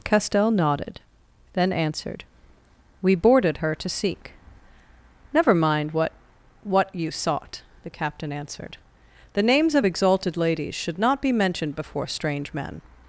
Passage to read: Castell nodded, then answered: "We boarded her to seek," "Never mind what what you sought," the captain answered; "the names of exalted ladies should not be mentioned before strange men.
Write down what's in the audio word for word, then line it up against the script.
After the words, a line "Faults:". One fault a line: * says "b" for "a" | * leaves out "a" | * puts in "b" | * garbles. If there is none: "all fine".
Castell nodded, then answered: "We boarded her to seek," "Never mind what what you sought," the captain answered; "the names of exalted ladies should not be mentioned before strange men.
Faults:
all fine